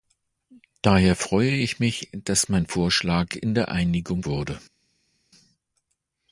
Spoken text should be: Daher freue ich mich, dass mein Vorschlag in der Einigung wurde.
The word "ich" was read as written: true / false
true